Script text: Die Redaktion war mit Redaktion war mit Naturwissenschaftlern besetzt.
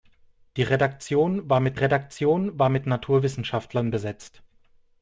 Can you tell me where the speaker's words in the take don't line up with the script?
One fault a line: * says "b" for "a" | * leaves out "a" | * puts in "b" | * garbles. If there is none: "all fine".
all fine